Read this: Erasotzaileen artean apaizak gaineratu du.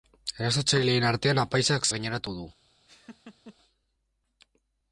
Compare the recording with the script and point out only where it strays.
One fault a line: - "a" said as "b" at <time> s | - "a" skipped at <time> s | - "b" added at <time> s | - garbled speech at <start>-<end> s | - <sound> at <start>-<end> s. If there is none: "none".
- laugh at 2.9-3.6 s